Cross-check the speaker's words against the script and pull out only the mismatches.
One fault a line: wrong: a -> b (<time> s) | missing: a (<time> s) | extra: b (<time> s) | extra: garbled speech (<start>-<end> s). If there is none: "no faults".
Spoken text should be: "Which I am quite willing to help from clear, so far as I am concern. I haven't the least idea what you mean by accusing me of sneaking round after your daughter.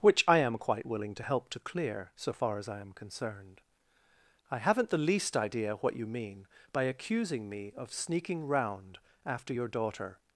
wrong: from -> to (1.5 s)
wrong: concern -> concerned (2.9 s)